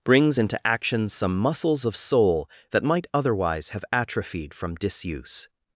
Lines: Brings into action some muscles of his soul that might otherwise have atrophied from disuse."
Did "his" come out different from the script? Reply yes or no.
yes